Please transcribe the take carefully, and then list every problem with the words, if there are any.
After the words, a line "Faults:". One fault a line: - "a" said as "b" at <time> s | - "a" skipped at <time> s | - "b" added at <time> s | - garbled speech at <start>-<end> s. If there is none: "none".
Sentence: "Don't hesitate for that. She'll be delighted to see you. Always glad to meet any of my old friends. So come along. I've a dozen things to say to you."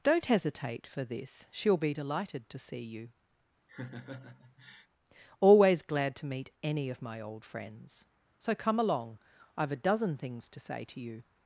"Don't hesitate for this. She'll be delighted to see you. Always glad to meet any of my old friends. So come along. I've a dozen things to say to you."
Faults:
- "that" said as "this" at 1.0 s